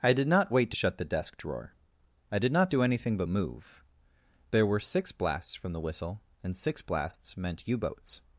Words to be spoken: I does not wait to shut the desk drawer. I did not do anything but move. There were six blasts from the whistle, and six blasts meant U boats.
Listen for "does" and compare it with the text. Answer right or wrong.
wrong